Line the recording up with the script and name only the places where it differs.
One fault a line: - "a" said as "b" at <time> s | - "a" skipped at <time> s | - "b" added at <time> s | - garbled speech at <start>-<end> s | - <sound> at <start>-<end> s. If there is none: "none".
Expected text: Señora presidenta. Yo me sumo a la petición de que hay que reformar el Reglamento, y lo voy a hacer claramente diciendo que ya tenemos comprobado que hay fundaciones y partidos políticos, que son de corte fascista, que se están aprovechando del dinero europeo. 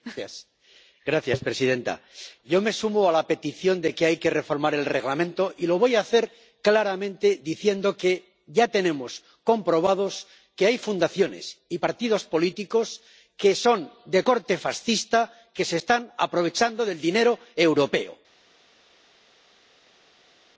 none